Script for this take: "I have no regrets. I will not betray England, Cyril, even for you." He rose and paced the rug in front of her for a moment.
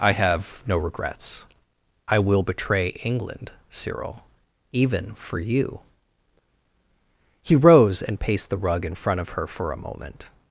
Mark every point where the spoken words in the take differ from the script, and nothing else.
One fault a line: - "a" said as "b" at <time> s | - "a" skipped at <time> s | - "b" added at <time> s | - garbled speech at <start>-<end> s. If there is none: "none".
- "not" skipped at 2.4 s